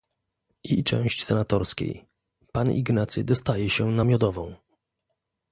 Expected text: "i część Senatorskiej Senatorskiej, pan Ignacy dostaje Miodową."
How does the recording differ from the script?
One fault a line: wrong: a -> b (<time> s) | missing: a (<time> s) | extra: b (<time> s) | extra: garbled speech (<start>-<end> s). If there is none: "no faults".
missing: Senatorskiej (2.0 s)
extra: się na (3.7 s)